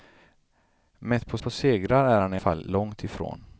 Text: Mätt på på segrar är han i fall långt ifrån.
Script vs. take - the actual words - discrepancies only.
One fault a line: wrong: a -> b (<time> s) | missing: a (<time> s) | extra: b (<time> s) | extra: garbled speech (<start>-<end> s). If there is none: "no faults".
no faults